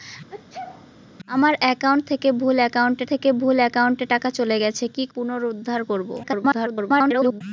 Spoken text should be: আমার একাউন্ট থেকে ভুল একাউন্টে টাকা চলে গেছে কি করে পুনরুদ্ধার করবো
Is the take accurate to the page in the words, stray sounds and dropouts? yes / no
no